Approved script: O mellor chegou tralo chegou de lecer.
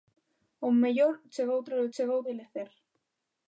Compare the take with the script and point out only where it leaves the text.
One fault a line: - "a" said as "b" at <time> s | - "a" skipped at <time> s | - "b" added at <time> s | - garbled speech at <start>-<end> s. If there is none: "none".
none